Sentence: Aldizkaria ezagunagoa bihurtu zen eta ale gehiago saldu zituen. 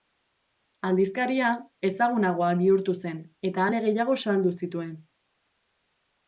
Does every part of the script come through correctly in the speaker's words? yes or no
yes